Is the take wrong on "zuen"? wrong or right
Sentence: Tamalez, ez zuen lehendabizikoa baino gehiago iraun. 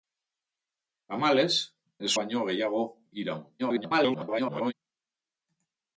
wrong